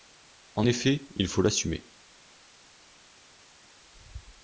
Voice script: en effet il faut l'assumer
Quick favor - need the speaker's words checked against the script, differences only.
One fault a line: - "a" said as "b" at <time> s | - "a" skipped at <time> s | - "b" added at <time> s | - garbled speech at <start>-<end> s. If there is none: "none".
none